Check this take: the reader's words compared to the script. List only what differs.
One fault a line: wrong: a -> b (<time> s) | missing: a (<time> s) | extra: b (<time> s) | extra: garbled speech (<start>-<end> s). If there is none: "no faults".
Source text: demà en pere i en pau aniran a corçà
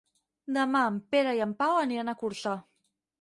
no faults